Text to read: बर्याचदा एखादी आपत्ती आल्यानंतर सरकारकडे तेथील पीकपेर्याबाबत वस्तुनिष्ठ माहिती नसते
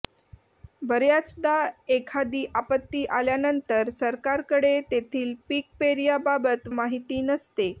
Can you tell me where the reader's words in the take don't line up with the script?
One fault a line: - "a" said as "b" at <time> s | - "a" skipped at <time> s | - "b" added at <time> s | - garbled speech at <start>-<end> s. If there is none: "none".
- "वस्तुनिष्ठ" skipped at 6.7 s